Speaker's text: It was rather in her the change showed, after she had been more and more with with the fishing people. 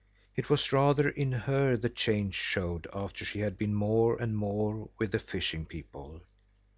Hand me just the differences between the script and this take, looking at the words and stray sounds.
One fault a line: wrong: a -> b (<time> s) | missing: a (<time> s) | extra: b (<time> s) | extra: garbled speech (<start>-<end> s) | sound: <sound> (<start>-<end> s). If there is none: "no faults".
missing: with (5.1 s)